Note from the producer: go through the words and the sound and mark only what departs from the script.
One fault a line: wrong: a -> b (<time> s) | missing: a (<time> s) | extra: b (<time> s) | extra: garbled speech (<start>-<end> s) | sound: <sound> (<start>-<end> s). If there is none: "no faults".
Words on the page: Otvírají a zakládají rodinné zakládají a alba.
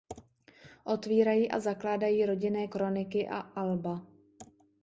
wrong: zakládají -> kroniky (2.6 s)